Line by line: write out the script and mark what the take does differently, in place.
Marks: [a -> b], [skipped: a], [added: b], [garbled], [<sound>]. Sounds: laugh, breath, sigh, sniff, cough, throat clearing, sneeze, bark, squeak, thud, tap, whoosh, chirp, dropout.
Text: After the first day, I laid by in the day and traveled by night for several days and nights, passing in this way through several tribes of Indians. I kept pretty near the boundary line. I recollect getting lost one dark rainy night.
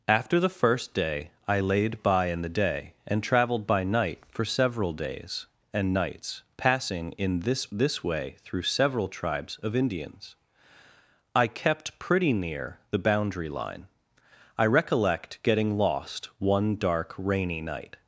After the first day, I laid by in the day and traveled by night for several days and nights, passing in this [added: this] way through several tribes of Indians. I kept pretty near the boundary line. I recollect getting lost one dark rainy night.